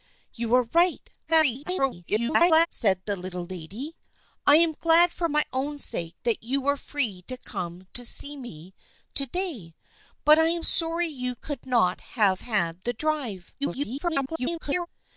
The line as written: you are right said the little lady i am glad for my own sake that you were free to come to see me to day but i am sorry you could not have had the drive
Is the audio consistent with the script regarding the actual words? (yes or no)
no